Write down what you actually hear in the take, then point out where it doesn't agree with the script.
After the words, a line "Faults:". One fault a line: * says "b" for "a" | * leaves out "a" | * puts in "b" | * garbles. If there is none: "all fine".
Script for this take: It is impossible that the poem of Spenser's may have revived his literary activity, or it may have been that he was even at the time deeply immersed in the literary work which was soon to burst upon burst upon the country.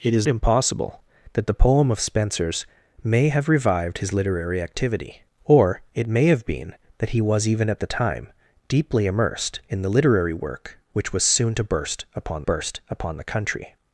It is impossible that the poem of Spenser's may have revived his literary activity, or it may have been that he was even at the time deeply immersed in the literary work which was soon to burst upon burst upon the country.
Faults:
all fine